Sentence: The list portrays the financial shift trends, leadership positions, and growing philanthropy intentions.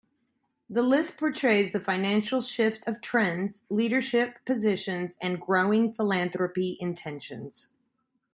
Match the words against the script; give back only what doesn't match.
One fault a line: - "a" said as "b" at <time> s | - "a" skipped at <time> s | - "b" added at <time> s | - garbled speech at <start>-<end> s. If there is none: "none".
- "of" added at 2.9 s